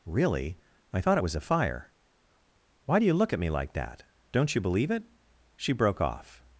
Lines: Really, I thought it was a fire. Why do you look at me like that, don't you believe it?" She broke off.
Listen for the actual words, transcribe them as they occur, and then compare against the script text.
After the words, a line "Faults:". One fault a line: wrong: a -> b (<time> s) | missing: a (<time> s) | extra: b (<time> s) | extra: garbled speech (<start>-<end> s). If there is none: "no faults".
Really, I thought it was a fire. Why do you look at me like that, don't you believe it?" She broke off.
Faults:
no faults